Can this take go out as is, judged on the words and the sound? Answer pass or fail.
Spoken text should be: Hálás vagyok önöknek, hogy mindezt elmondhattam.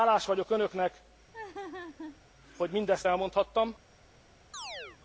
fail